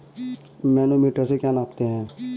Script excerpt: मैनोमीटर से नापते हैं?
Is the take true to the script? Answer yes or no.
no